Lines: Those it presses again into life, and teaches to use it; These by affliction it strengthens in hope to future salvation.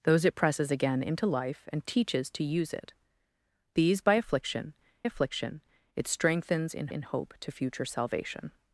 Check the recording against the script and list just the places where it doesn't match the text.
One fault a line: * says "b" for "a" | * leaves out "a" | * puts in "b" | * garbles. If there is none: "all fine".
* puts in "affliction"
* puts in "in"